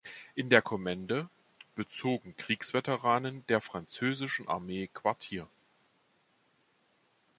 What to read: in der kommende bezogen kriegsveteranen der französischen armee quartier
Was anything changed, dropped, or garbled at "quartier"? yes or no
no